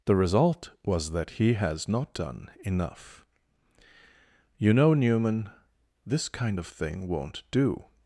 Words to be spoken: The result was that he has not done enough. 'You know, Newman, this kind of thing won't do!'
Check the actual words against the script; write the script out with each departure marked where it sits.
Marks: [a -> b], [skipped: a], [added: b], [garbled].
The result was that he has not done enough. 'You know, Newman, this kind of thing won't do!'